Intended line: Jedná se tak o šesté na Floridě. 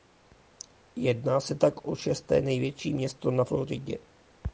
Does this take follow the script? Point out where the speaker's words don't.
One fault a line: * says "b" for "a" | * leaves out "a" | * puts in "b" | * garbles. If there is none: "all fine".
* puts in "největší město"